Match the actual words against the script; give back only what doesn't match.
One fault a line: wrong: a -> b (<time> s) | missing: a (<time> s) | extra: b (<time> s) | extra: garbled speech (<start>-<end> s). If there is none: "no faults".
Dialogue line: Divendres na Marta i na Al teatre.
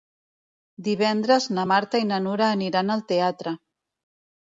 extra: Nura aniran (2.3 s)